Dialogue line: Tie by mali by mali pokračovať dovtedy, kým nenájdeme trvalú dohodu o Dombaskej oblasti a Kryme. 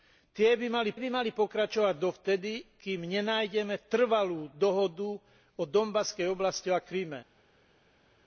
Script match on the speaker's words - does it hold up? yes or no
yes